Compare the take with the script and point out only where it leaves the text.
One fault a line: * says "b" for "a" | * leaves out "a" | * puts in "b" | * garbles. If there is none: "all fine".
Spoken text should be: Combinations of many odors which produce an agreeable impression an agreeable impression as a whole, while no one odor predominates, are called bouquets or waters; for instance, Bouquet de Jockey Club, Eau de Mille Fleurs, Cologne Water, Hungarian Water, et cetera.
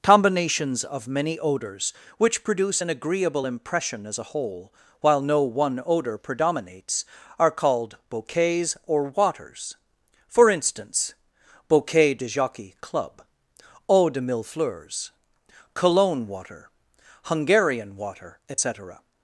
* leaves out "an agreeable impression"